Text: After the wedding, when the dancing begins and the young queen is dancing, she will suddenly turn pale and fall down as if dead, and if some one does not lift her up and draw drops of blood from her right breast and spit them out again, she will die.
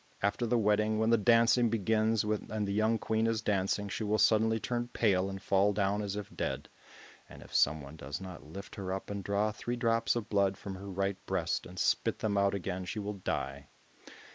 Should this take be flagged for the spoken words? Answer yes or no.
yes